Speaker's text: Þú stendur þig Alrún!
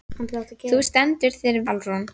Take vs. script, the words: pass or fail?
pass